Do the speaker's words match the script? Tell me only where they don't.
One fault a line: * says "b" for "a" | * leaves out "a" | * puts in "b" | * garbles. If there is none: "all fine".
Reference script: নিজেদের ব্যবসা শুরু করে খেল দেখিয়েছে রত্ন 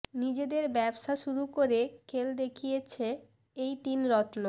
* puts in "এই তিন"